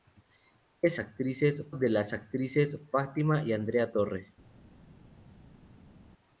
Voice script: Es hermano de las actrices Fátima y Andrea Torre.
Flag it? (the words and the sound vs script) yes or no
yes